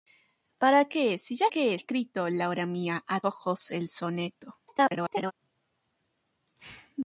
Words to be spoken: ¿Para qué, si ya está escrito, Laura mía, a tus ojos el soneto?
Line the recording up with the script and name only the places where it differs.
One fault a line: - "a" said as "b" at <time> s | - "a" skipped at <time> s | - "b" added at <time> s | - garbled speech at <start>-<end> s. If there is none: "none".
- "está" said as "qué" at 1.5 s
- "tus" skipped at 3.2 s
- garbled speech at 4.7-5.3 s